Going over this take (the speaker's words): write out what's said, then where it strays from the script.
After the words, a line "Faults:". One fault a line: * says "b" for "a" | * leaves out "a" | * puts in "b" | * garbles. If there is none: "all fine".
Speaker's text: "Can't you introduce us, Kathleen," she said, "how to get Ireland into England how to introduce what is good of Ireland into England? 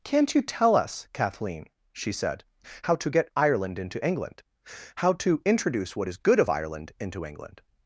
"Can't you tell us, Kathleen," she said, "how to get Ireland into England how to introduce what is good of Ireland into England?
Faults:
* says "tell" for "introduce"